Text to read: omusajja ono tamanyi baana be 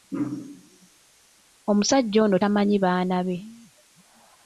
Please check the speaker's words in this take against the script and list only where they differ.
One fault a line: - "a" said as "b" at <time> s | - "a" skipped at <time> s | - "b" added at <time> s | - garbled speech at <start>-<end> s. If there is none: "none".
none